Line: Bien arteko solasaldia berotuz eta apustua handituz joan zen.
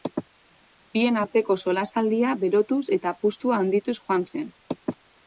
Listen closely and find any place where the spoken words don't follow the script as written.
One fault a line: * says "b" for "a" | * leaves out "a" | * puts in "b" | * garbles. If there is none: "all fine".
all fine